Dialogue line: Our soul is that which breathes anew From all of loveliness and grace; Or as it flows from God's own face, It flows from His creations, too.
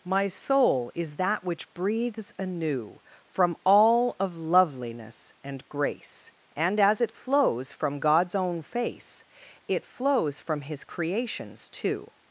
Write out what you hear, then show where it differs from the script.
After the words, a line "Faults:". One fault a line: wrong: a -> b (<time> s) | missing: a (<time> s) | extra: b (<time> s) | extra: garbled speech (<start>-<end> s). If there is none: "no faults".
My soul is that which breathes anew From all of loveliness and grace; And as it flows from God's own face, It flows from His creations, too.
Faults:
wrong: Our -> My (0.0 s)
wrong: Or -> And (6.5 s)